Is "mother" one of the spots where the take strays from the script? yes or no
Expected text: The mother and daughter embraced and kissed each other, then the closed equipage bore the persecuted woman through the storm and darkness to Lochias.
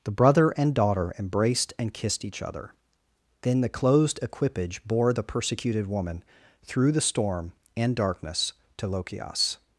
yes